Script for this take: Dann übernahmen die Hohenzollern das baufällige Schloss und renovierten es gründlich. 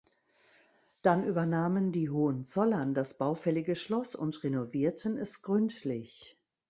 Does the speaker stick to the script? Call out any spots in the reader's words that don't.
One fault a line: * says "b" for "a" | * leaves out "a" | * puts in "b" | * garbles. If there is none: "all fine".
all fine